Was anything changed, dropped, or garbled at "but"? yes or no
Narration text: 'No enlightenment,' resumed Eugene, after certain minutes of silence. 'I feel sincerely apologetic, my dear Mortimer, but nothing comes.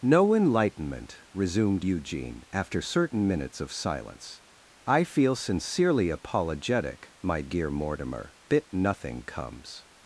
yes